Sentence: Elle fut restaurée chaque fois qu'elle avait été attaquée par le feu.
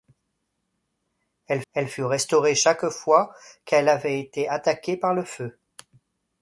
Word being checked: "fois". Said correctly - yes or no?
yes